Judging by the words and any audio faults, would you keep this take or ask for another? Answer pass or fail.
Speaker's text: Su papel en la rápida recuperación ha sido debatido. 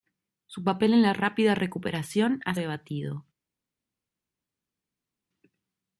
fail